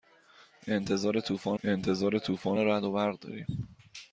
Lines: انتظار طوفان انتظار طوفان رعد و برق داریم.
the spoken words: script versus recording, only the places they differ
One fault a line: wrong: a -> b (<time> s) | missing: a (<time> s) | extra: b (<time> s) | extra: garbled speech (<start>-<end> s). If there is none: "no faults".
no faults